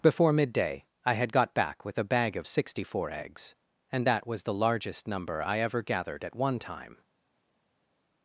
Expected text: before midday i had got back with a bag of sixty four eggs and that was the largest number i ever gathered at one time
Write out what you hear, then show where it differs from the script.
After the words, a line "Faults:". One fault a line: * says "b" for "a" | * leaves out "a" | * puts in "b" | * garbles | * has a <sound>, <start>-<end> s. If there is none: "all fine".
before midday i had got back with a bag of sixty four eggs and that was the largest number i ever gathered at one time
Faults:
all fine